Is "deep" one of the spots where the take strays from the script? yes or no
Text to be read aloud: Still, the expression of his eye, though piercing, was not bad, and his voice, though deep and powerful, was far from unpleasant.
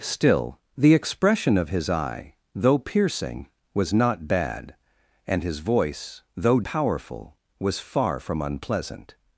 yes